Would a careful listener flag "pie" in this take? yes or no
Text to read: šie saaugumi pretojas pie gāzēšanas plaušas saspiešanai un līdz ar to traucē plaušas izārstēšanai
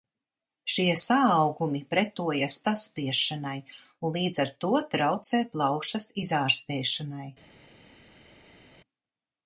yes